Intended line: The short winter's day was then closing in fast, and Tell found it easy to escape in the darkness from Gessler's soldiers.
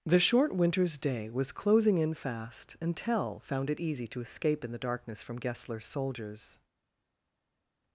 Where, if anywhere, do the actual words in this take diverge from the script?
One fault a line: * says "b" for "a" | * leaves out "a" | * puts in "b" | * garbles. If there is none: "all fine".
* leaves out "then"